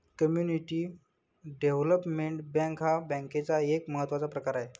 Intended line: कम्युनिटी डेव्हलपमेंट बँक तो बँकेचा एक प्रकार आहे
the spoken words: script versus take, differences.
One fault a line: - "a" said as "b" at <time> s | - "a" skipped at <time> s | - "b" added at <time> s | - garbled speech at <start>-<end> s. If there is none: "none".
- "तो" said as "हा" at 2.8 s
- "महत्त्वाचा" added at 3.9 s